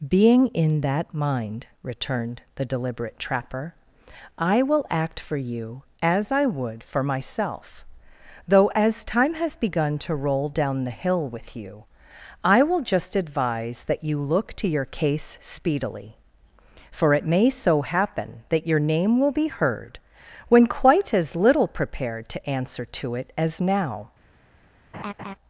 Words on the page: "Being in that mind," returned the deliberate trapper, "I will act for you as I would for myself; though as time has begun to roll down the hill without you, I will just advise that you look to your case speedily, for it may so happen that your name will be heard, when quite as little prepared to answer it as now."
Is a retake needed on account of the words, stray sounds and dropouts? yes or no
yes